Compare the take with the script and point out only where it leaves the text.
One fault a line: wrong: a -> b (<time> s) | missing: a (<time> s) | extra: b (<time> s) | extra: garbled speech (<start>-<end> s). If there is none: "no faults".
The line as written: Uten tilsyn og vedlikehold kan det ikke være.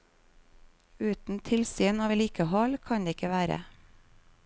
no faults